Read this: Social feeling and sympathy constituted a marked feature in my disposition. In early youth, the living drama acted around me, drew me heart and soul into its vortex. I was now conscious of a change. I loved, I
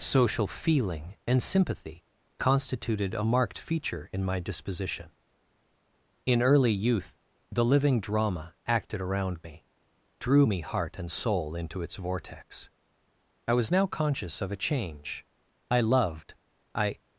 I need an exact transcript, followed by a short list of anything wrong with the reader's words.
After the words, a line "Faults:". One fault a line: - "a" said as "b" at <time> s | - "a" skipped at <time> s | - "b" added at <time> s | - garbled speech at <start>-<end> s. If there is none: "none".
Social feeling and sympathy constituted a marked feature in my disposition. In early youth, the living drama acted around me, drew me heart and soul into its vortex. I was now conscious of a change. I loved, I
Faults:
none